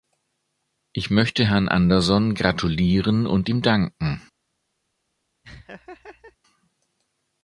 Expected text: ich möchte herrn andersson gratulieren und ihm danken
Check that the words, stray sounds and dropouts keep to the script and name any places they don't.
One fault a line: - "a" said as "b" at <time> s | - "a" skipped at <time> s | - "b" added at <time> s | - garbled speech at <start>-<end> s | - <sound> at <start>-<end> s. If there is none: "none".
- laugh at 5.4-6.4 s